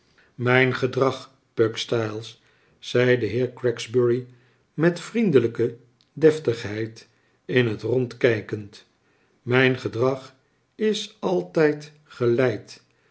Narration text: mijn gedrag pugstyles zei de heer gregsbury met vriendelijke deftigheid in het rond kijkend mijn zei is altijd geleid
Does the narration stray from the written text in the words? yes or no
yes